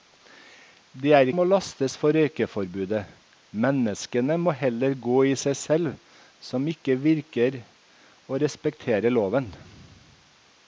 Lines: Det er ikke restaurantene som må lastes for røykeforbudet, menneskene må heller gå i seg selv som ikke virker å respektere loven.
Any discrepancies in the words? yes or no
yes